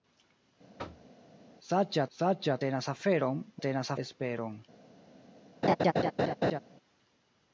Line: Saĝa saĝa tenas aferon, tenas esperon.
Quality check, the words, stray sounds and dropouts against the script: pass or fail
fail